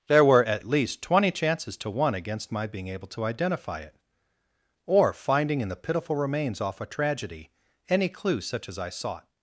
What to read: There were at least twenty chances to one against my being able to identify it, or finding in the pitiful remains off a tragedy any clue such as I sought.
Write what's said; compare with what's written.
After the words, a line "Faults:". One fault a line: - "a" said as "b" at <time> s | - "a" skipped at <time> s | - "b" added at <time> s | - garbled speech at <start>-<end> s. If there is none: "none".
There were at least twenty chances to one against my being able to identify it, or finding in the pitiful remains off a tragedy any clue such as I sought.
Faults:
none